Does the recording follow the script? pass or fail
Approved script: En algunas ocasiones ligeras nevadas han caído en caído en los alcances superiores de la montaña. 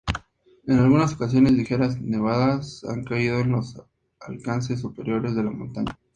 fail